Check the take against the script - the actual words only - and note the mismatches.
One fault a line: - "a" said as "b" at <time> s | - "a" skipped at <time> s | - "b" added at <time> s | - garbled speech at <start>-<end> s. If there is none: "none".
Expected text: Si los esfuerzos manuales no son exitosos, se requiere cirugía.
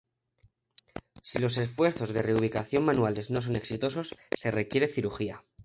- "de reubicación" added at 2.1 s